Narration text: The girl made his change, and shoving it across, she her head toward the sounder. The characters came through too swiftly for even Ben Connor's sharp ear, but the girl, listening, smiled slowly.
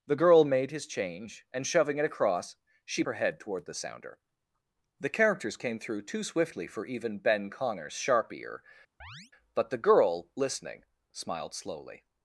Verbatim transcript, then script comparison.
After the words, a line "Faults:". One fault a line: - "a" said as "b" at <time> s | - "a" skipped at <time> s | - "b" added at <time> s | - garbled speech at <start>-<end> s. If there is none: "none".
The girl made his change, and shoving it across, she her head toward the sounder. The characters came through too swiftly for even Ben Connor's sharp ear, but the girl, listening, smiled slowly.
Faults:
none